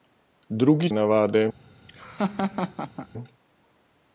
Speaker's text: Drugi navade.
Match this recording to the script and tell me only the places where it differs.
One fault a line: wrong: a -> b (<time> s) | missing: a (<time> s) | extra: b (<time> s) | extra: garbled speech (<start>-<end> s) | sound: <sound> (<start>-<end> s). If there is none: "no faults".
sound: laugh (1.9-3.1 s)